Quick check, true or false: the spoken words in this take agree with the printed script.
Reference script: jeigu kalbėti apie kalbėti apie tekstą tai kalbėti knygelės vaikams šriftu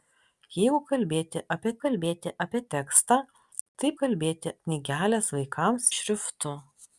true